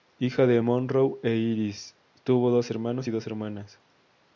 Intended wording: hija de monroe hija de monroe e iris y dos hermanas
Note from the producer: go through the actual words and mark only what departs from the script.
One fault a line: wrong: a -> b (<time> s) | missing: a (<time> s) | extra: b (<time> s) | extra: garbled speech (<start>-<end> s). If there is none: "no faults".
wrong: hija de monroe e iris -> e iris tuvo dos hermanos (1.2 s)